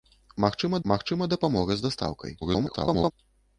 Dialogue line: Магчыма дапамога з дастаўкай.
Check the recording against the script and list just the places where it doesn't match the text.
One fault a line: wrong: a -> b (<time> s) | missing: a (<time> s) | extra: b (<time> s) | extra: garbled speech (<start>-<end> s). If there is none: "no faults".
extra: магчыма (0.9 s)
extra: garbled speech (2.4-3.1 s)